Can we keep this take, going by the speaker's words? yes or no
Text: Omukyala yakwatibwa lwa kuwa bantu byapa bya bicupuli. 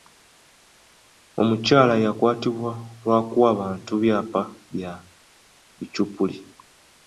yes